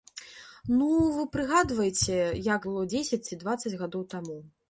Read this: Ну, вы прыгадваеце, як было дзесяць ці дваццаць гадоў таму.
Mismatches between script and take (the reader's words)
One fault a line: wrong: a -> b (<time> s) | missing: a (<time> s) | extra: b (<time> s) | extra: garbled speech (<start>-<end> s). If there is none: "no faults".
no faults